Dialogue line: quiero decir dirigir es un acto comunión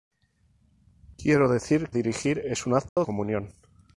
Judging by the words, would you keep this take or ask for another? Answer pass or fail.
pass